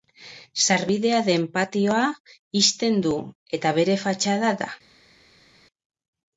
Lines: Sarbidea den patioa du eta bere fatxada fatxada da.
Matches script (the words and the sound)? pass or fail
fail